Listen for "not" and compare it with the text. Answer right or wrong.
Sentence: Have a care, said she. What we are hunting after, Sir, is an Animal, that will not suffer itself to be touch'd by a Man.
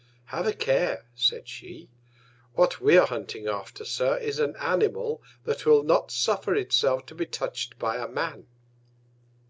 right